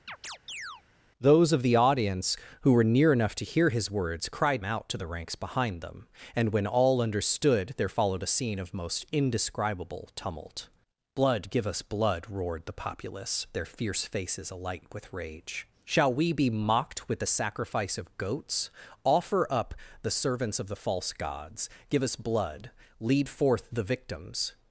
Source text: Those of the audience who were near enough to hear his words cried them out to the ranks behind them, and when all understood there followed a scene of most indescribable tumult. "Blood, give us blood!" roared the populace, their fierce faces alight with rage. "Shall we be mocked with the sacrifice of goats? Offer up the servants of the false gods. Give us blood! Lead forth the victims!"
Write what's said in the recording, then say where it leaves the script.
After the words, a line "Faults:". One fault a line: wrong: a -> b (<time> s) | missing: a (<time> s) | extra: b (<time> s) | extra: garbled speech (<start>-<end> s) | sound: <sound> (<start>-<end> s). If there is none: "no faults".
Those of the audience who were near enough to hear his words cried out to the ranks behind them, and when all understood there followed a scene of most indescribable tumult. "Blood, give us blood!" roared the populace, their fierce faces alight with rage. "Shall we be mocked with the sacrifice of goats? Offer up the servants of the false gods. Give us blood! Lead forth the victims!"
Faults:
sound: chirp (0.1-0.8 s)
missing: them (4.6 s)